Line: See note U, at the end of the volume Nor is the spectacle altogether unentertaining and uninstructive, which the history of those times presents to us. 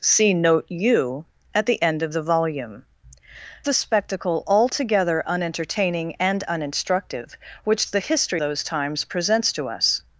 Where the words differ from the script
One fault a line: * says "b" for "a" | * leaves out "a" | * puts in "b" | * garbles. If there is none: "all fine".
* leaves out "Nor is"
* leaves out "of"